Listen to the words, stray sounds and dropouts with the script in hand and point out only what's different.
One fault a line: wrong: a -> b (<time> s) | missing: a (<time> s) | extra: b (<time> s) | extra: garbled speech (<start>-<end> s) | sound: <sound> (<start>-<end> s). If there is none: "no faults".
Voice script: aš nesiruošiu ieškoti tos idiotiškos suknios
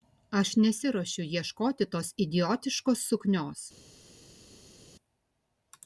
no faults